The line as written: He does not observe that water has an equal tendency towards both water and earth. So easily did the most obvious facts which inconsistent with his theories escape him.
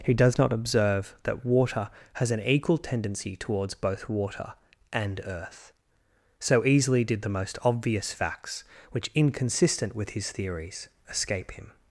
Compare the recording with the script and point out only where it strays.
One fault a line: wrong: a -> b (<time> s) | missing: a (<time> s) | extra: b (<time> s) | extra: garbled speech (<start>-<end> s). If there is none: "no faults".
no faults